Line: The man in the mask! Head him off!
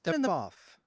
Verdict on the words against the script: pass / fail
fail